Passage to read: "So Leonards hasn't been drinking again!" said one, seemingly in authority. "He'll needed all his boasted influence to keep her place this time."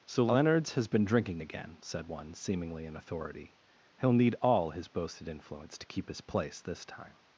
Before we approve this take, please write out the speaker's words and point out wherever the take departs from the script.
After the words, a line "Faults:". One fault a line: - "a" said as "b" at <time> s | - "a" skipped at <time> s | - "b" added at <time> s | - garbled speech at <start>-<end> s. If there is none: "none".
"So Leonards has been drinking again!" said one, seemingly in authority. "He'll need all his boasted influence to keep his place this time."
Faults:
- "hasn't" said as "has" at 0.7 s
- "needed" said as "need" at 4.1 s
- "her" said as "his" at 6.1 s